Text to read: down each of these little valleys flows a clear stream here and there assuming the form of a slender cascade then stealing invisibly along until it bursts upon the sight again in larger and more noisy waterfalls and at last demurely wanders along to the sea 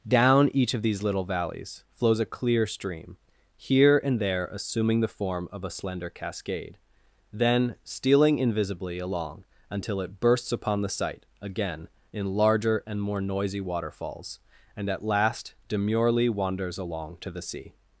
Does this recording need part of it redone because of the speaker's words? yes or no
no